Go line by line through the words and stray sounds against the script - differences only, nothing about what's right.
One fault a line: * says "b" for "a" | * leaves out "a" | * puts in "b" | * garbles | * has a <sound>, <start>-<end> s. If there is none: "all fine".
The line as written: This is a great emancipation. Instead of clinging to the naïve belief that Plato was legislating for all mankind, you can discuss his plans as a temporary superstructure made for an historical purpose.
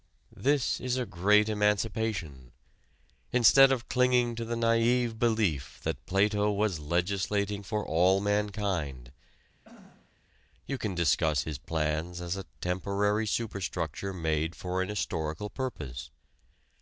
* has a throat clearing, 9.6-10.2 s